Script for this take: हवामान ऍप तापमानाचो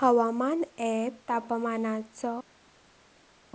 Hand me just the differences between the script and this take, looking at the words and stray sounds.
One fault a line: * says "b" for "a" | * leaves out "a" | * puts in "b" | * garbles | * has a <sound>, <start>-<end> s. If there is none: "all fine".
all fine